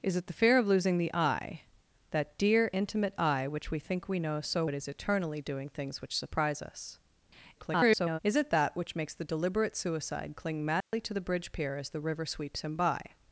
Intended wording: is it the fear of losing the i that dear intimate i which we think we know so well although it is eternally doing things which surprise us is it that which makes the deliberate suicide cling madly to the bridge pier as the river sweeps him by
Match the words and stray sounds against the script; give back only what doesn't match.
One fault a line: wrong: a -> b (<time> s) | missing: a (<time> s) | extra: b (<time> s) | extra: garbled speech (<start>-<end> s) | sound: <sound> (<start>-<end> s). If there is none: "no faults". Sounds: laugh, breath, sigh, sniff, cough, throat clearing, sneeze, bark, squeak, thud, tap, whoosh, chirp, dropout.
missing: well although (4.7 s)
extra: garbled speech (7.5-8.2 s)
sound: dropout (10.8-10.9 s)